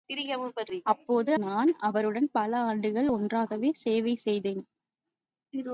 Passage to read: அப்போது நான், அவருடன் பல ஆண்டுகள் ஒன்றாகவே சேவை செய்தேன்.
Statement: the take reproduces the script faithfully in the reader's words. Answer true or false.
true